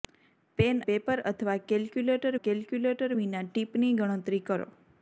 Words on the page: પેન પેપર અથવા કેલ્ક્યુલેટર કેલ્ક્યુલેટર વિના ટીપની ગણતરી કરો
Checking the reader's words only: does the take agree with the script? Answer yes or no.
yes